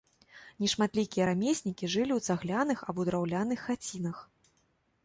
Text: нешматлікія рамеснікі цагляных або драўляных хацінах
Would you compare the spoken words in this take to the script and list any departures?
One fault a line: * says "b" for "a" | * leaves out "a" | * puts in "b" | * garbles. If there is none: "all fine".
* puts in "жылі ў"